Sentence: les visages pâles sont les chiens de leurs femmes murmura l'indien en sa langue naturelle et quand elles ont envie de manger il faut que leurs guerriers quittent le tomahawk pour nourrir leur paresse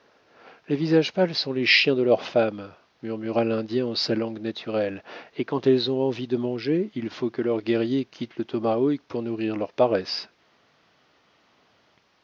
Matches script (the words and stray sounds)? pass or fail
pass